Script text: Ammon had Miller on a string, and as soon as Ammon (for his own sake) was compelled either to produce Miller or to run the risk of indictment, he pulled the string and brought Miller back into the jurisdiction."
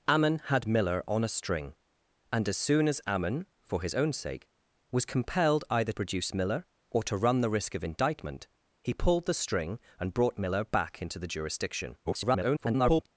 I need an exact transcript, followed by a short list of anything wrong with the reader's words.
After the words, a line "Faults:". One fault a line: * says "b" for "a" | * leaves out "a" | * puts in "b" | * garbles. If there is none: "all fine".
Ammon had Miller on a string, and as soon as Ammon (for his own sake) was compelled either produce Miller or to run the risk of indictment, he pulled the string and brought Miller back into the jurisdiction." [garbled]
Faults:
* leaves out "to"
* garbles